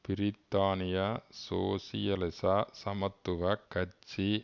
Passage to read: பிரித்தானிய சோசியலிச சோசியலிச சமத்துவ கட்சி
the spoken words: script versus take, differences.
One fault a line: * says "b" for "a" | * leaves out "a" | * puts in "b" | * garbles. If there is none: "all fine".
* leaves out "சோசியலிச"